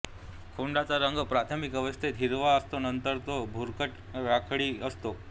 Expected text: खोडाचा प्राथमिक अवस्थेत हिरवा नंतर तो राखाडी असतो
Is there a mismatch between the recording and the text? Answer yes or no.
yes